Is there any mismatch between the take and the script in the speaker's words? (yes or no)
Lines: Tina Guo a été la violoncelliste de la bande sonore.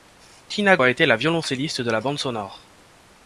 yes